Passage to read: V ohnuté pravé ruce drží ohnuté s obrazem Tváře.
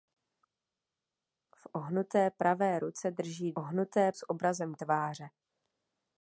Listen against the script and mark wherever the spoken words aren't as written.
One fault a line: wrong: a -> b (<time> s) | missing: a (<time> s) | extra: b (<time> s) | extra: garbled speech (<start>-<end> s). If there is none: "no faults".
no faults